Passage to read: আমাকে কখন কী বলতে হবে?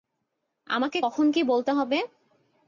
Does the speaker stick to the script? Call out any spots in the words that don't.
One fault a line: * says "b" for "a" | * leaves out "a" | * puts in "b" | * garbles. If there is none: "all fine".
all fine